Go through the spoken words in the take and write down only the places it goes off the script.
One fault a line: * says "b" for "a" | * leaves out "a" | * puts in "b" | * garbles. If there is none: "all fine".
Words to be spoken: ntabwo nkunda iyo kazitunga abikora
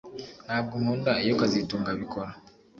all fine